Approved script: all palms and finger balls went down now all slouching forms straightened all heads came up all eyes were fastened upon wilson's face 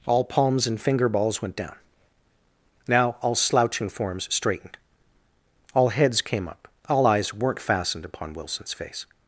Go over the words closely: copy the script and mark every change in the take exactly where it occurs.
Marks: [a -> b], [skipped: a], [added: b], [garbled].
all palms and finger balls went down now all slouching forms straightened all heads came up all eyes [were -> weren't] fastened upon wilson's face